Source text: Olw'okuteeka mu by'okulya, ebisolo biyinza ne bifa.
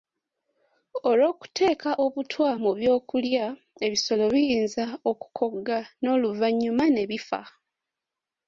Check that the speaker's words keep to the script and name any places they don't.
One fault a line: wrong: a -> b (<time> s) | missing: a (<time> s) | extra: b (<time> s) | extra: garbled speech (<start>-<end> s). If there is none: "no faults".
extra: obutwa (2.0 s)
extra: okukogga n'oluvannyuma (5.1 s)